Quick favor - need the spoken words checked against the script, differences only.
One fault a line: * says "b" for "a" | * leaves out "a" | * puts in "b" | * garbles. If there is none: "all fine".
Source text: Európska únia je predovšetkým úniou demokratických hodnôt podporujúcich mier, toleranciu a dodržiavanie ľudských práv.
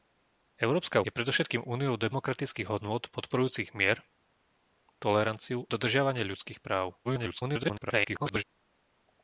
* leaves out "únia"
* leaves out "a"
* garbles